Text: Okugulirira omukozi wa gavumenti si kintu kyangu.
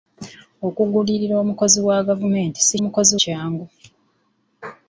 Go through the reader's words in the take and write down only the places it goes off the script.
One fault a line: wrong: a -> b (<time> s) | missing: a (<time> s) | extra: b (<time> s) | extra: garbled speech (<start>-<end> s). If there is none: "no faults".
wrong: kintu -> omukozi (2.8 s)